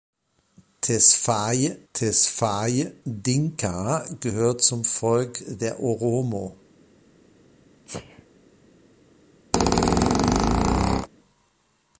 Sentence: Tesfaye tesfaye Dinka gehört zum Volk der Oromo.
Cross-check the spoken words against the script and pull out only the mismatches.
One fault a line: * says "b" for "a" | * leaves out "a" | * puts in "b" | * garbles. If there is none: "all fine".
all fine